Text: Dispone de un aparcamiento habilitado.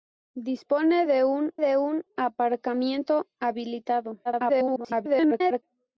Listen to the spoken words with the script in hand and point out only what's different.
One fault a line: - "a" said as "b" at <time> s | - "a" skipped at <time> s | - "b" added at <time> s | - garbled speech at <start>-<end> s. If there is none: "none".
- "de un" added at 1.6 s
- garbled speech at 4.2-5.6 s